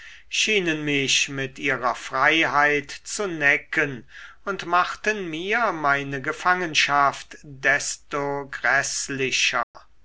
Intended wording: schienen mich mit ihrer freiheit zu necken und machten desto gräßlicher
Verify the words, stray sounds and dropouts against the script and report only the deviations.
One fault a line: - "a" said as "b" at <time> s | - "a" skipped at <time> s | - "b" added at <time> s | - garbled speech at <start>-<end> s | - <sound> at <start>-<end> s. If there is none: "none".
- "mir meine gefangenschaft" added at 5.3 s
- dropout at 9.6-9.7 s